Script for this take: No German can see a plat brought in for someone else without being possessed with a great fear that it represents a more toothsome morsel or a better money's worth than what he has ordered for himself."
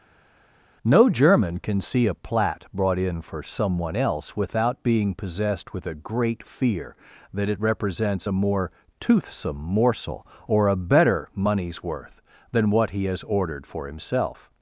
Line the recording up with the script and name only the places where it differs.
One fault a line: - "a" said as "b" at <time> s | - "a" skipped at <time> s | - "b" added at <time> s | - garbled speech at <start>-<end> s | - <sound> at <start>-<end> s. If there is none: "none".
none